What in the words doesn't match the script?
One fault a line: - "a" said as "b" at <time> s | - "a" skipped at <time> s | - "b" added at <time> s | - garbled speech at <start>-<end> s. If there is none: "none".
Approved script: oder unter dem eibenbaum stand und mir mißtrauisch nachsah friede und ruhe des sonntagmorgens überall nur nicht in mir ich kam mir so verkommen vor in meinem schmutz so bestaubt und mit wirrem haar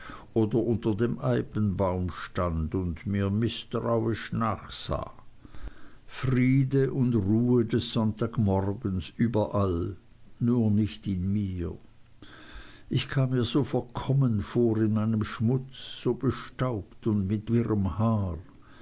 none